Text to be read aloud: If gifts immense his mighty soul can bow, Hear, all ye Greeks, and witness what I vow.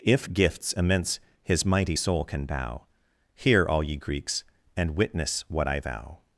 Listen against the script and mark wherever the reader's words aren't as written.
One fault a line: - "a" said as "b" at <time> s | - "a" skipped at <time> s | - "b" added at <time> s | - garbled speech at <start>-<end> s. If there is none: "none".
none